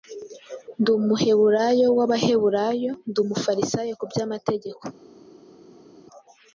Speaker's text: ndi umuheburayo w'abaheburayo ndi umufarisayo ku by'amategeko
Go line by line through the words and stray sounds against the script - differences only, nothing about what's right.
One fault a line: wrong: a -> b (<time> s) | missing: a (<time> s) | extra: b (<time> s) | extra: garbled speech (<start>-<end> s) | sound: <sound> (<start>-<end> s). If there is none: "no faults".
no faults